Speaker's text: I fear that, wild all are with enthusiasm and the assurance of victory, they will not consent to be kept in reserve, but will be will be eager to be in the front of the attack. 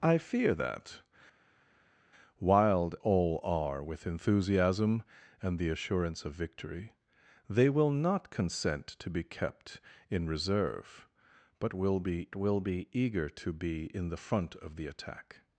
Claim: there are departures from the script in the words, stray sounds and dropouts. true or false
false